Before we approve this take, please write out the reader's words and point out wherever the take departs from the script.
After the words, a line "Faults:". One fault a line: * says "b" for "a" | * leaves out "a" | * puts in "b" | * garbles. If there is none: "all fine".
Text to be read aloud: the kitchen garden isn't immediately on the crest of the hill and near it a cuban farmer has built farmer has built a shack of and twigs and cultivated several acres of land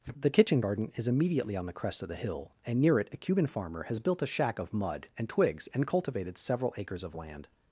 the kitchen garden is immediately on the crest of the hill and near it a cuban farmer has built a shack of mud and twigs and cultivated several acres of land
Faults:
* says "is" for "isn't"
* leaves out "farmer has built"
* puts in "mud"